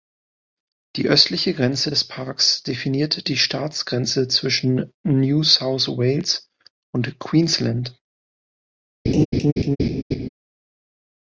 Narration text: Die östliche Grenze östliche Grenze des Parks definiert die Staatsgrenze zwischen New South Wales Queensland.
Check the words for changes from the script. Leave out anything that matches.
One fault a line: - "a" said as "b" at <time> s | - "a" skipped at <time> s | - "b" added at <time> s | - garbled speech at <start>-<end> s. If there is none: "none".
- "östliche Grenze" skipped at 1.9 s
- "und" added at 6.9 s